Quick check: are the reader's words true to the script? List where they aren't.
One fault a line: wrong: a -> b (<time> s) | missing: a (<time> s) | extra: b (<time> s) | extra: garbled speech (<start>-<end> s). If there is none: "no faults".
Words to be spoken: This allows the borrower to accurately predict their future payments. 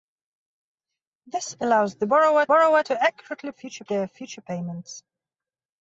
extra: borrower (2.5 s)
wrong: predict -> future (3.5 s)